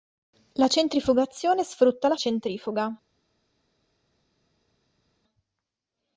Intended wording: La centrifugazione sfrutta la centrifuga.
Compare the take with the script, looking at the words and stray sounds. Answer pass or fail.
pass